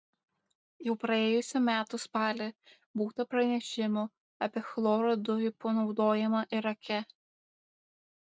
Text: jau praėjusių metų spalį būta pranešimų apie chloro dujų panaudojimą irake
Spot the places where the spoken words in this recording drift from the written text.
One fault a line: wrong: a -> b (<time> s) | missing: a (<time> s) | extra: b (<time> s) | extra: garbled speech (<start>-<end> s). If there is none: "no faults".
no faults